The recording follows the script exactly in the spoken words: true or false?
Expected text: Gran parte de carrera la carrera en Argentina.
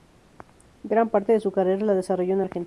false